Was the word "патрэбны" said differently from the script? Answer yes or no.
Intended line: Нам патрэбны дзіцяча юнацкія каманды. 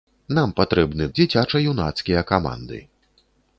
no